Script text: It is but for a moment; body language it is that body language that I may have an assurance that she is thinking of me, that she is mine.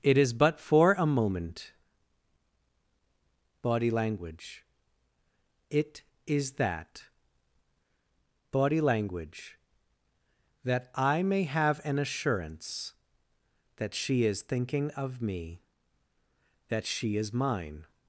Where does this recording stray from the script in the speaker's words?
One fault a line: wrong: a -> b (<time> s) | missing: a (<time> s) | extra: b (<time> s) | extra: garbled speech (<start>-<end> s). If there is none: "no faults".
no faults